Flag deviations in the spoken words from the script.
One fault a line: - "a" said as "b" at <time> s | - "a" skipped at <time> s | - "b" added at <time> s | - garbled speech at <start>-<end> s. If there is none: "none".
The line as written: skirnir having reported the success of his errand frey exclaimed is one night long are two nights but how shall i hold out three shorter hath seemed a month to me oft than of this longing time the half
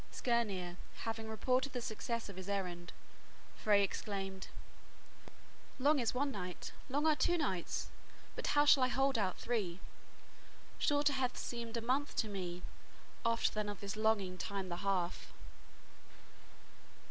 - "long" added at 5.8 s